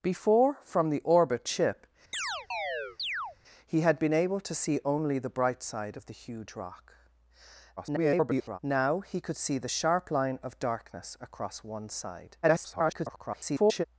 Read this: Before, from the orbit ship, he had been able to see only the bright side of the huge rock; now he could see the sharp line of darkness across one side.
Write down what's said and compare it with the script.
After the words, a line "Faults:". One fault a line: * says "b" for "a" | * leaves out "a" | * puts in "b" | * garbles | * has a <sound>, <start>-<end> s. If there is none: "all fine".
Before, from the orbit ship, he had been able to see only the bright side of the huge rock; [garbled] now he could see the sharp line of darkness across one side. [garbled]
Faults:
* has a chirp, 2.1-3.4 s
* garbles
* garbles